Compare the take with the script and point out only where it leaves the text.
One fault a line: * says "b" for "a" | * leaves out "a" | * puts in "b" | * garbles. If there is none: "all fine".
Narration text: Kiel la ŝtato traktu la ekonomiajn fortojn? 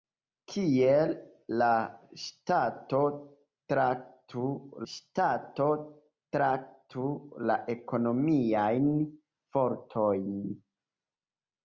* puts in "ŝtato traktu"